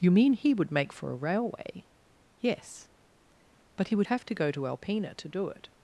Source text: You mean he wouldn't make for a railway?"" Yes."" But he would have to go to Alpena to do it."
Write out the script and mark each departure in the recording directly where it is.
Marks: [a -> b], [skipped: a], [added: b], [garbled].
You mean he [wouldn't -> would] make for a railway?"" Yes."" But he would have to go to Alpena to do it."